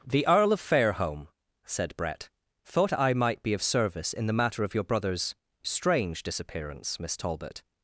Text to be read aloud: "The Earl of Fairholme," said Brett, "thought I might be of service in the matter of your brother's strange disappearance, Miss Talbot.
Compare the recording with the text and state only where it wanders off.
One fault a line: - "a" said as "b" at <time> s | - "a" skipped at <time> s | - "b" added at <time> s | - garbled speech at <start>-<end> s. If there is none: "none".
none